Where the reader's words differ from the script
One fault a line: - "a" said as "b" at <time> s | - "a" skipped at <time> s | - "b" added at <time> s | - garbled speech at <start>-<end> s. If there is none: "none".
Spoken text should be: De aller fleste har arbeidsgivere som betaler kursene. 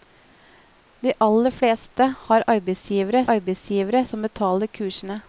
- "arbeidsgivere" added at 3.3 s